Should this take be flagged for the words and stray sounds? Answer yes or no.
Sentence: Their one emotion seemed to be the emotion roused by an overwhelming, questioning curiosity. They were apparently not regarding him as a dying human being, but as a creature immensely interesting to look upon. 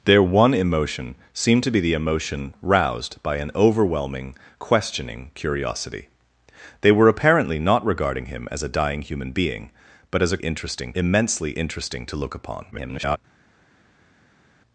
yes